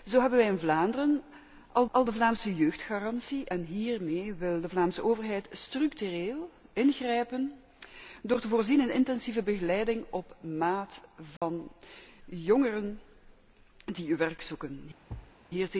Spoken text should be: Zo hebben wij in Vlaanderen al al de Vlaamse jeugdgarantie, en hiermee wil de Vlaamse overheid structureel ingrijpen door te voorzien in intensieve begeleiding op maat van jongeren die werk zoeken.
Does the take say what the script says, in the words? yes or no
yes